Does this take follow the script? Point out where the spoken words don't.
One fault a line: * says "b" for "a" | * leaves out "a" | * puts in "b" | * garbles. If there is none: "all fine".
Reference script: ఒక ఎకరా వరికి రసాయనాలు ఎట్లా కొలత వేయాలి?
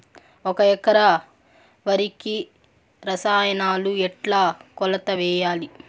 all fine